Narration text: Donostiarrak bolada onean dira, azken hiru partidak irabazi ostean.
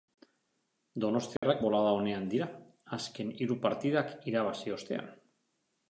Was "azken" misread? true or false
false